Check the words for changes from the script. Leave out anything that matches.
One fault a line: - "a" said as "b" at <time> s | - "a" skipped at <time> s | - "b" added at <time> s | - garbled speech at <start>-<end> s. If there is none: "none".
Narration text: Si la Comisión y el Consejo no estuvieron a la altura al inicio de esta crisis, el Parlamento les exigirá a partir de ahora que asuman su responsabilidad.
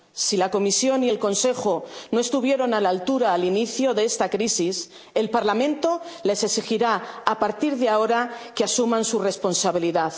none